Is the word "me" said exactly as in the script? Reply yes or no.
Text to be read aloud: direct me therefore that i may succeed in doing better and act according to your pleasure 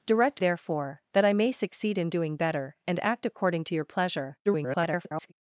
no